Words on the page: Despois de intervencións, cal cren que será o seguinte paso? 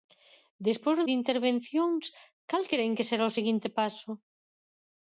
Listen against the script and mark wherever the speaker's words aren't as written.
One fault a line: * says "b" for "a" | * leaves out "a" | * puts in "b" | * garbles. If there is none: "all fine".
all fine